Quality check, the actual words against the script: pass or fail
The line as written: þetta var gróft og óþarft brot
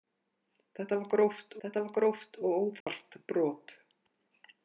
fail